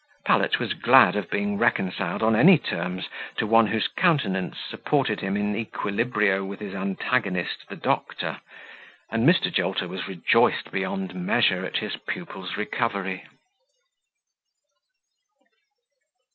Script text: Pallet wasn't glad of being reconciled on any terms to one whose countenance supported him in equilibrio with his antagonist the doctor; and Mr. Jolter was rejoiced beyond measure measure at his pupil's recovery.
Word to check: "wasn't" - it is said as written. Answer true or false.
false